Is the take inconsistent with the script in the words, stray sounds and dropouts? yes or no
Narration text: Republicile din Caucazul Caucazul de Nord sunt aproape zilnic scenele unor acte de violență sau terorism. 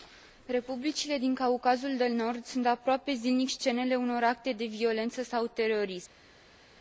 yes